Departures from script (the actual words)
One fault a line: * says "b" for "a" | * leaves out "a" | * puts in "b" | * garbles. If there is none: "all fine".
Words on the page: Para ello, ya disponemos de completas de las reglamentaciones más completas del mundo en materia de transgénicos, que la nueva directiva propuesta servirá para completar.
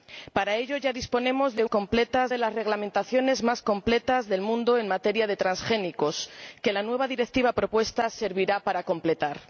all fine